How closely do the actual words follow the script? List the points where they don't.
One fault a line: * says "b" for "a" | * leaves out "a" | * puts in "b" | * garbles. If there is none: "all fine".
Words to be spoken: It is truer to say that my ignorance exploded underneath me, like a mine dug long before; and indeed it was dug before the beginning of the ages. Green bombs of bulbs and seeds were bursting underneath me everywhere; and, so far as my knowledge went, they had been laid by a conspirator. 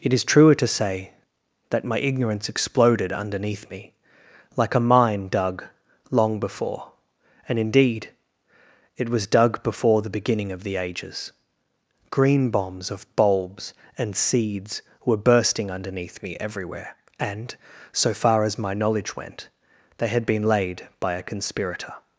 all fine